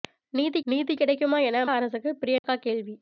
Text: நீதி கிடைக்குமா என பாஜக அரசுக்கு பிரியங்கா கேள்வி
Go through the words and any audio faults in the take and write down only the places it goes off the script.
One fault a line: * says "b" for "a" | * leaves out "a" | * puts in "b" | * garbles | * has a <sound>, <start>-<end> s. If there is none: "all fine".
* puts in "நீதி"
* leaves out "பாஜக"
* has a dropout, 2.4-2.4 s